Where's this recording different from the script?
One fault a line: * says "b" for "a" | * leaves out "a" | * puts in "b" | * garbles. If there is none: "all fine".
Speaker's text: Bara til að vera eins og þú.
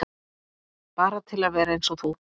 all fine